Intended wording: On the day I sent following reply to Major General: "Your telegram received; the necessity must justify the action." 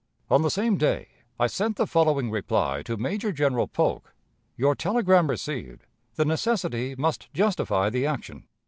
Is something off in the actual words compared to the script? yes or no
yes